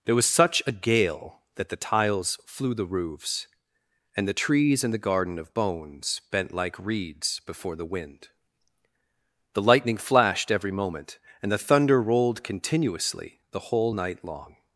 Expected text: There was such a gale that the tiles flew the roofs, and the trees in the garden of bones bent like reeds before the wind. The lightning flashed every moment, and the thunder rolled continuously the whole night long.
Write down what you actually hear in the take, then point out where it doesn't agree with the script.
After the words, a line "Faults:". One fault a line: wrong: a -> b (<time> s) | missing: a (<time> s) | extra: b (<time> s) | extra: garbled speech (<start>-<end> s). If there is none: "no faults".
There was such a gale that the tiles flew the roofs, and the trees in the garden of bones bent like reeds before the wind. The lightning flashed every moment, and the thunder rolled continuously the whole night long.
Faults:
no faults